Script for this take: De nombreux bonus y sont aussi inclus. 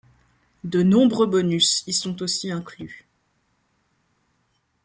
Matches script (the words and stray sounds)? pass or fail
pass